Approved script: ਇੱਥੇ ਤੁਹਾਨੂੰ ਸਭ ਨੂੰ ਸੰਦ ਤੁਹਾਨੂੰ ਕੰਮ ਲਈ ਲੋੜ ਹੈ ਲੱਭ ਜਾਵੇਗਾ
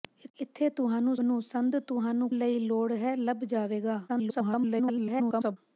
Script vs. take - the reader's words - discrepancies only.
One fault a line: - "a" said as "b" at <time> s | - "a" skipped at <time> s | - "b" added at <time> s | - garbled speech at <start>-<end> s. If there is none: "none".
- "ਸਭ" skipped at 1.1 s
- "ਕੰਮ" skipped at 2.3 s
- garbled speech at 4.1-5.6 s